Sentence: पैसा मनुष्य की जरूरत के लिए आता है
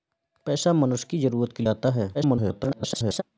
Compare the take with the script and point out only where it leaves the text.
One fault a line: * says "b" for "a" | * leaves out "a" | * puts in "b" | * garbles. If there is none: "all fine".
* leaves out "लिए"
* garbles